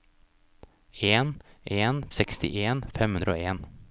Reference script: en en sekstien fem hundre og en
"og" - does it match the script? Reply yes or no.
yes